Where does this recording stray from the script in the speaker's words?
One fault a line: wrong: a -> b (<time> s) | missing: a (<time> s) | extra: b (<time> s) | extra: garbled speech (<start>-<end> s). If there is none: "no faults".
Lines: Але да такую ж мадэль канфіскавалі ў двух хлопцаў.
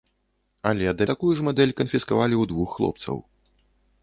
no faults